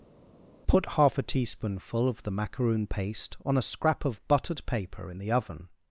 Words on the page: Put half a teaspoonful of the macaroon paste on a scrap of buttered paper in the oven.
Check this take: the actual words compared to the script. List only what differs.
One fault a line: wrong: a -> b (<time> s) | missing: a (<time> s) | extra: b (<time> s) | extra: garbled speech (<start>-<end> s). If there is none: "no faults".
no faults